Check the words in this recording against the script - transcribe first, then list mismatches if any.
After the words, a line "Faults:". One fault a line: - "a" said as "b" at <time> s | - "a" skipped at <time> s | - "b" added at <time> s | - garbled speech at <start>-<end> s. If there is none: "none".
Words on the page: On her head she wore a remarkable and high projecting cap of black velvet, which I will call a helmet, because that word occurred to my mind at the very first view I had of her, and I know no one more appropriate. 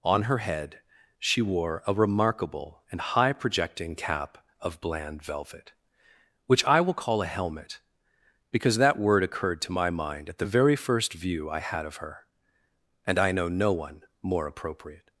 On her head she wore a remarkable and high projecting cap of bland velvet, which I will call a helmet, because that word occurred to my mind at the very first view I had of her, and I know no one more appropriate.
Faults:
- "black" said as "bland" at 4.8 s